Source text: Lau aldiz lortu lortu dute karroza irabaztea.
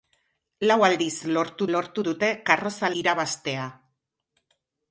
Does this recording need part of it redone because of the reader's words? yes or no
no